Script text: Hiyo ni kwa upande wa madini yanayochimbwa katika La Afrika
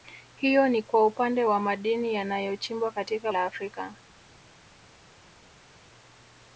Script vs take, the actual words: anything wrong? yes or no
no